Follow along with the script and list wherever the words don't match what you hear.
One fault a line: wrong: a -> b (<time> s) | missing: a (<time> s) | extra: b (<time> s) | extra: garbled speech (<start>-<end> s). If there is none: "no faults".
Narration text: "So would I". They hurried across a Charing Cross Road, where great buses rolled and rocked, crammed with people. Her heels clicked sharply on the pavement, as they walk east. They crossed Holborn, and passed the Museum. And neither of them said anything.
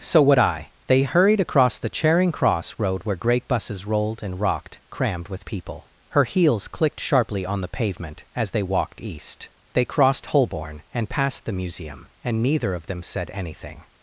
wrong: a -> the (1.8 s)
wrong: walk -> walked (8.6 s)